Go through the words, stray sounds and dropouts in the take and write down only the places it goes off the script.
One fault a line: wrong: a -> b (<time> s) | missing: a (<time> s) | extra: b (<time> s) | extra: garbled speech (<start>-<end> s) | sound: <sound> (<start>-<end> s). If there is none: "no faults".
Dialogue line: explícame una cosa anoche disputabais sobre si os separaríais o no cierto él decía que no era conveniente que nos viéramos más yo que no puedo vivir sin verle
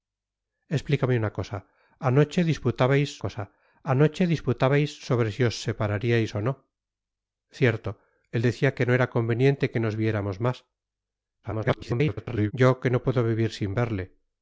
extra: cosa anoche disputabais (3.2 s)
extra: garbled speech (11.4-12.5 s)